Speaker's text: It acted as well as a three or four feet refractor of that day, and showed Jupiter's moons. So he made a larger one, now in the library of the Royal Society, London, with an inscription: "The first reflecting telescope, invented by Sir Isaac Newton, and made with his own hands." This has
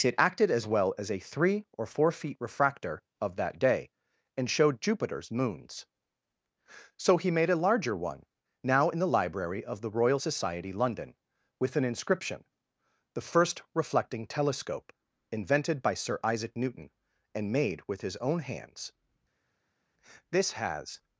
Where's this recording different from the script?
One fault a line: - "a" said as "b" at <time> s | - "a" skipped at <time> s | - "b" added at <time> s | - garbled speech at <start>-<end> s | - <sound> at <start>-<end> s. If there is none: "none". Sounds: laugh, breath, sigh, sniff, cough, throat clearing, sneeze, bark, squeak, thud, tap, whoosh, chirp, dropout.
none